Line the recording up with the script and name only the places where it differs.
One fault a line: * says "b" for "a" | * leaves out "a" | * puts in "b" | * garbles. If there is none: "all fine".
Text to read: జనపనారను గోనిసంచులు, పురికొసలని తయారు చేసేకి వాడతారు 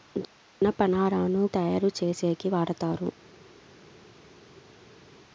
* leaves out "గోనిసంచులు పురికొసలని"